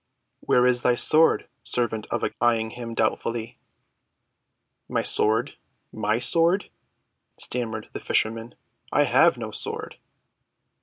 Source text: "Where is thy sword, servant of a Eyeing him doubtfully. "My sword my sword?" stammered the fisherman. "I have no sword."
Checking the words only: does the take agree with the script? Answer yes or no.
yes